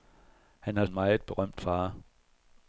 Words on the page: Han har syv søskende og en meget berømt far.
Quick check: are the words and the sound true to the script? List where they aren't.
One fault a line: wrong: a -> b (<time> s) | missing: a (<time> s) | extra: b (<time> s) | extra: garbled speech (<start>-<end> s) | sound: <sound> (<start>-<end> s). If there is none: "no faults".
missing: syv søskende og (0.8 s)